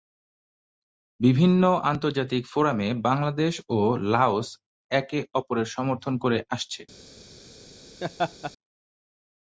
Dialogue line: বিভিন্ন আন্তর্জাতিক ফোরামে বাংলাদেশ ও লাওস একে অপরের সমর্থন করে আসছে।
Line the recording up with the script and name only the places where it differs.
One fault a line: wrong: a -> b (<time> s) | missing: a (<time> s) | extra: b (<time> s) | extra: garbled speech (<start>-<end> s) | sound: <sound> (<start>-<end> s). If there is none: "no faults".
sound: laugh (8.0-8.5 s)